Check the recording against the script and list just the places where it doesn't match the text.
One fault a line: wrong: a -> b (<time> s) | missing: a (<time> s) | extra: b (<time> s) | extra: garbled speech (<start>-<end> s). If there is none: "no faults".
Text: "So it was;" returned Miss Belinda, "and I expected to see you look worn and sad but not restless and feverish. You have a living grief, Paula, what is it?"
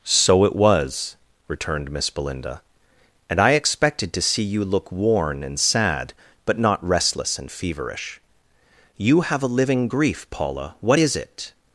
no faults